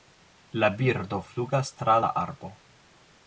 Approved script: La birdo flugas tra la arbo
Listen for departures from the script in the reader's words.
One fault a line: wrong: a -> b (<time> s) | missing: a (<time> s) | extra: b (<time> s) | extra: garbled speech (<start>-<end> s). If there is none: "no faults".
no faults